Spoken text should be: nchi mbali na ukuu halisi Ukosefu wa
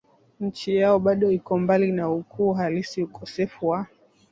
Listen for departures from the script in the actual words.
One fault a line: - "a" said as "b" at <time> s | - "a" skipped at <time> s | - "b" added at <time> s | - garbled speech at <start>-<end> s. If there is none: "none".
- "yao bado iko" added at 0.8 s